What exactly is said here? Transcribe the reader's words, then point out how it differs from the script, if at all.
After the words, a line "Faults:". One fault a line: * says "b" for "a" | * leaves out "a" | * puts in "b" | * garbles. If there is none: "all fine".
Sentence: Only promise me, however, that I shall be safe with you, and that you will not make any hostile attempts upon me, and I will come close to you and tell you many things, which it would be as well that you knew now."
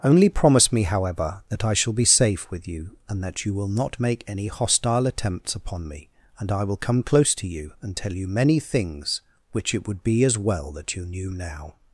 Only promise me, however, that I shall be safe with you, and that you will not make any hostile attempts upon me, and I will come close to you and tell you many things, which it would be as well that you knew now."
Faults:
all fine